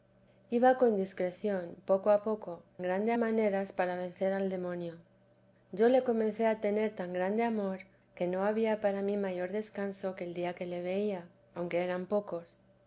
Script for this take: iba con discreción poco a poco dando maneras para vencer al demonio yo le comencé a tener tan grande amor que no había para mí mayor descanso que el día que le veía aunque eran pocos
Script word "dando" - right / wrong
wrong